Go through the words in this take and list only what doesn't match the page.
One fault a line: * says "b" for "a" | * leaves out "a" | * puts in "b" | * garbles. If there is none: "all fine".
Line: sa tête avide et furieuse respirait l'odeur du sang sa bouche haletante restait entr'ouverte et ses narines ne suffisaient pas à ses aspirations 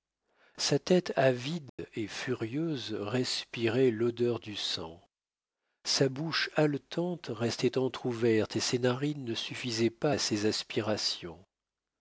all fine